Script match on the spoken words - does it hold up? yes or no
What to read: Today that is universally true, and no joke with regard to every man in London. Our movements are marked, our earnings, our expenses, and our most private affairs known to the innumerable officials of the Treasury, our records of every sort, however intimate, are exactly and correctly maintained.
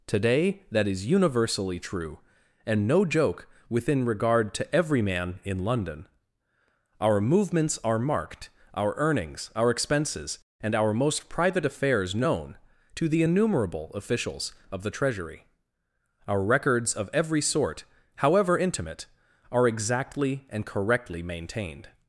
no